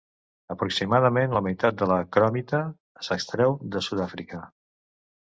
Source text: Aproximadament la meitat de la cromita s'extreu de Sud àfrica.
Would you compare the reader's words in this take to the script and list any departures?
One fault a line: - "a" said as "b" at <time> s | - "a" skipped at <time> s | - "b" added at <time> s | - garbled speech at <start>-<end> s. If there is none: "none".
none